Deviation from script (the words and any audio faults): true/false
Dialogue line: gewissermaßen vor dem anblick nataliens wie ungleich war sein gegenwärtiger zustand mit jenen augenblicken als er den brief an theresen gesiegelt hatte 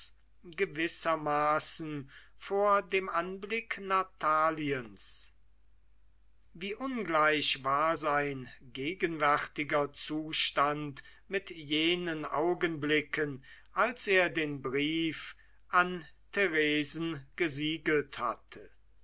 false